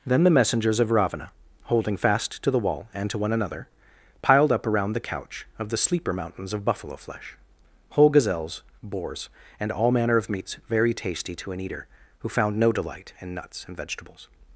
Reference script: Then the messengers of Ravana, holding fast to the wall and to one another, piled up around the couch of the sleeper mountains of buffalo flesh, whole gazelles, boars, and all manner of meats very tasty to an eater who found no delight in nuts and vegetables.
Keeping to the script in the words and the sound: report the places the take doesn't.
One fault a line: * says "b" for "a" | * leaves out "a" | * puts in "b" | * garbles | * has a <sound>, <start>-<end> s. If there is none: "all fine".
all fine